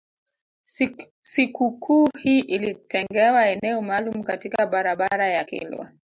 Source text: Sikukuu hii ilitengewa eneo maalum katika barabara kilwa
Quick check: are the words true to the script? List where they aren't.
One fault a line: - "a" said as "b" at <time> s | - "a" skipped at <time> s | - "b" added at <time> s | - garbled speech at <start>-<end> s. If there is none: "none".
- "ya" added at 5.3 s